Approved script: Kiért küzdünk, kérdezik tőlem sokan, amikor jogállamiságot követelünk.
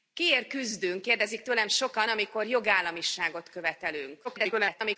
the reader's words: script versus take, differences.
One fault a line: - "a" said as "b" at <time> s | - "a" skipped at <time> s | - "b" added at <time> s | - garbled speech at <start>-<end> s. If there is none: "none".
- garbled speech at 4.2-5.0 s